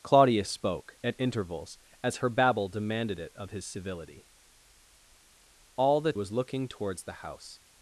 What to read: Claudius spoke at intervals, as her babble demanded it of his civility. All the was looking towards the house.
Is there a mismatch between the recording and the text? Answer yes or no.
no